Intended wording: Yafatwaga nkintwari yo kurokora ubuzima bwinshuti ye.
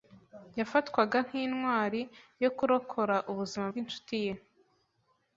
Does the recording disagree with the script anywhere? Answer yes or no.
no